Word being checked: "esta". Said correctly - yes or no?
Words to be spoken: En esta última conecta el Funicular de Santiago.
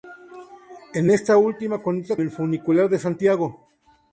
yes